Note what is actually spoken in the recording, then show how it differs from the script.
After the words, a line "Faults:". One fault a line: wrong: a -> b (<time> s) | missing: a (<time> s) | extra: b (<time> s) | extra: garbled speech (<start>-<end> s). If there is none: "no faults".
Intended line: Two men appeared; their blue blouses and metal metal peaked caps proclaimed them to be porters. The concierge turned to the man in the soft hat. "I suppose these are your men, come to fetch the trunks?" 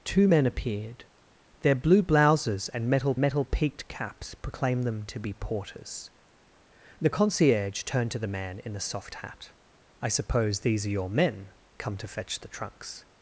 Two men appeared; their blue blouses and metal metal peaked caps proclaimed them to be porters. The concierge turned to the man in the soft hat. "I suppose these are your men, come to fetch the trunks?"
Faults:
no faults